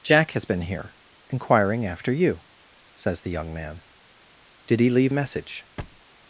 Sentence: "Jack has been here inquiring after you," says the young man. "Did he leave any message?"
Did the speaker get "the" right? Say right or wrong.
right